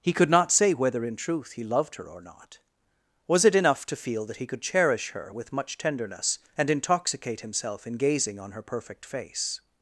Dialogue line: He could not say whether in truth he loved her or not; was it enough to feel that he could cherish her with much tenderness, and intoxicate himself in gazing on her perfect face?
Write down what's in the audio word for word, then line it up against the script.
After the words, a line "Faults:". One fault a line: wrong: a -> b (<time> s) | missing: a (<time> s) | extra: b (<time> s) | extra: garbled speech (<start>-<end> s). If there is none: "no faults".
He could not say whether in truth he loved her or not; was it enough to feel that he could cherish her with much tenderness, and intoxicate himself in gazing on her perfect face?
Faults:
no faults